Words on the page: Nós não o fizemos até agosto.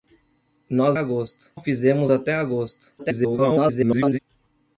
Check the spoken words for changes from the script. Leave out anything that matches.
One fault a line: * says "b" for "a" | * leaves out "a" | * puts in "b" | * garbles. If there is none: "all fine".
* says "agosto" for "não"
* garbles